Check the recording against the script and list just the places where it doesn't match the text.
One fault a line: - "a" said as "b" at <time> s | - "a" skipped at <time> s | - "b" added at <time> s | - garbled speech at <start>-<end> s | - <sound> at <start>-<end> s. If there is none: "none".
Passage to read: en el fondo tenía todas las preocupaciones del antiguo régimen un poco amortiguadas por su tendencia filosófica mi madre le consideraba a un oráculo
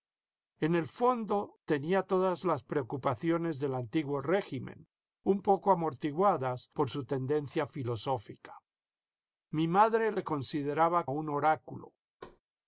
- thud at 12.2-12.4 s